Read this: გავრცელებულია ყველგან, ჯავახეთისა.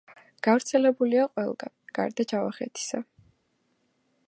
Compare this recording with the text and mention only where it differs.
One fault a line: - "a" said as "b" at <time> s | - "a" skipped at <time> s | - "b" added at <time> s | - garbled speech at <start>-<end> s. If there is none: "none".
- "გარდა" added at 2.0 s